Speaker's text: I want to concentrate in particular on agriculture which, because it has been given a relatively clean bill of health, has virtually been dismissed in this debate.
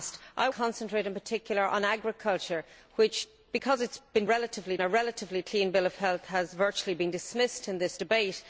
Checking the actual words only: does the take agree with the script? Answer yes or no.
no